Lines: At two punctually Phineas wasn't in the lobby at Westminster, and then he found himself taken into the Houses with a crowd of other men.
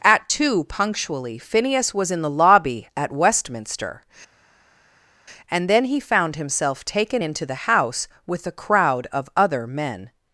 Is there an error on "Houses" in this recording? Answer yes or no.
yes